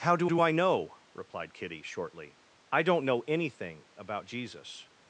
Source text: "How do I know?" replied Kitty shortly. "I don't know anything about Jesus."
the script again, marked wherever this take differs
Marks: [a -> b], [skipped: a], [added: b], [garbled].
"How do [added: do] I know?" replied Kitty shortly. "I don't know anything about Jesus."